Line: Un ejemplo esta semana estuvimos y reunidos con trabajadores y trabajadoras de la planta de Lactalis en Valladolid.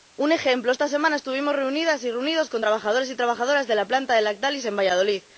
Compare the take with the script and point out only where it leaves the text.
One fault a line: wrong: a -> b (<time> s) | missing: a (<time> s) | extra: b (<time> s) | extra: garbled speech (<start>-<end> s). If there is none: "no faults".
extra: reunidas (1.6 s)